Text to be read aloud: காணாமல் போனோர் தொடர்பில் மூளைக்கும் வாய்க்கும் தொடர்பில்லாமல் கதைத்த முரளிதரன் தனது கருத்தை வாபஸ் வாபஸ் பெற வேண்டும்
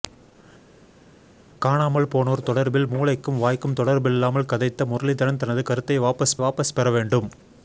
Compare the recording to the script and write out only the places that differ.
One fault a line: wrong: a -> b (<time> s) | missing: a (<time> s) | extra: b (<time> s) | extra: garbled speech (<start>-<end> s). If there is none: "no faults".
no faults